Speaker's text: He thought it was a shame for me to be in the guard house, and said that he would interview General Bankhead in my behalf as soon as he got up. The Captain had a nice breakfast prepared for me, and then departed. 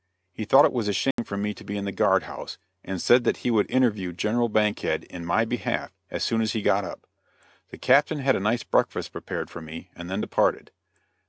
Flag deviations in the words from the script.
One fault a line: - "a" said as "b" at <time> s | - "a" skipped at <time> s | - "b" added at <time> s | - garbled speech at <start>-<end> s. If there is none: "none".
none